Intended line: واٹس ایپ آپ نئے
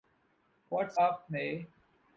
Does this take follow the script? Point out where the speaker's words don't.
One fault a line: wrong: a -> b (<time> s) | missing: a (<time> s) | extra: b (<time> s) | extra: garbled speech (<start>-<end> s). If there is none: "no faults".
missing: ایپ (1.0 s)